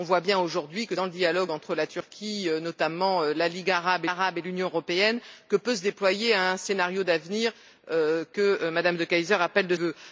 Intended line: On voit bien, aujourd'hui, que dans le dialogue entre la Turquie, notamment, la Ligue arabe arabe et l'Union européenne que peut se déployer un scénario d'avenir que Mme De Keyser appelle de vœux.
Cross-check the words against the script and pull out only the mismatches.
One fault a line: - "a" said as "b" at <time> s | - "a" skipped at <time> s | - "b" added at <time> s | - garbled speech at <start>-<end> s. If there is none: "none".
none